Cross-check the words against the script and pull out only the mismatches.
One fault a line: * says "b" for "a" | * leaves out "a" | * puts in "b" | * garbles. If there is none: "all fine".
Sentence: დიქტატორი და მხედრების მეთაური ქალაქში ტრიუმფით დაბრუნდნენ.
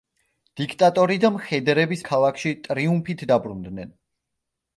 * leaves out "მეთაური"